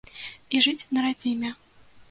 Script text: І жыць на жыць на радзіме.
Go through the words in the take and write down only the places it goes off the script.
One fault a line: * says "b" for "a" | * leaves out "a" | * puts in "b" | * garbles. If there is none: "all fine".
* leaves out "жыць на"